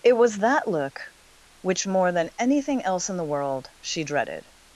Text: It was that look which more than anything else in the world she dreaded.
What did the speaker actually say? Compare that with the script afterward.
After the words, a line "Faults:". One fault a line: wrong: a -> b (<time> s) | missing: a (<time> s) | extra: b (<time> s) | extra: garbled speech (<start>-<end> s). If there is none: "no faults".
It was that look which more than anything else in the world she dreaded.
Faults:
no faults